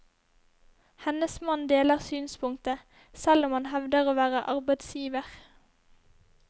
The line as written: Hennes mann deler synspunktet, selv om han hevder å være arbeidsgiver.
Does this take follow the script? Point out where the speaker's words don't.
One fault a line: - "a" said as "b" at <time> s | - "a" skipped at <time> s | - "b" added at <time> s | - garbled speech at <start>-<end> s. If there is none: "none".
none